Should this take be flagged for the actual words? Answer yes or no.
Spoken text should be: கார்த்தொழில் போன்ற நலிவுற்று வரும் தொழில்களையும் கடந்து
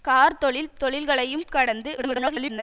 yes